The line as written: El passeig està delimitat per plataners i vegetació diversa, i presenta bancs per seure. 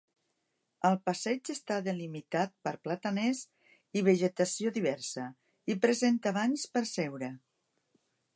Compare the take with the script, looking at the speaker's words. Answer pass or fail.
pass